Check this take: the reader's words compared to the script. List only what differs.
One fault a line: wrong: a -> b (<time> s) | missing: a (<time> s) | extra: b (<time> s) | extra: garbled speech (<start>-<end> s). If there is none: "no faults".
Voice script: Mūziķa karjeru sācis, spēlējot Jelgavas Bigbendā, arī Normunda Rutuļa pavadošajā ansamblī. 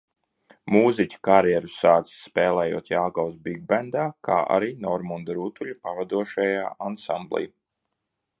extra: kā (4.3 s)